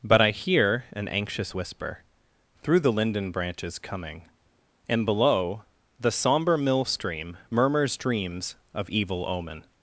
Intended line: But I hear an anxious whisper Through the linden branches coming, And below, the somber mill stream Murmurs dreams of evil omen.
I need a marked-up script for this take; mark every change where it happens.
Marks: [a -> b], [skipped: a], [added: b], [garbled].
But I hear an anxious whisper Through the linden branches coming, And below, the somber mill stream Murmurs dreams of evil omen.